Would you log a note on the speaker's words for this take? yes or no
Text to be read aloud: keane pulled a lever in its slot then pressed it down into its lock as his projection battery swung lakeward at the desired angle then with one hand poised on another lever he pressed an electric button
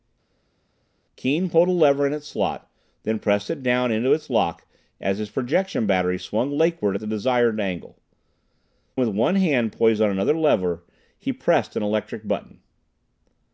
yes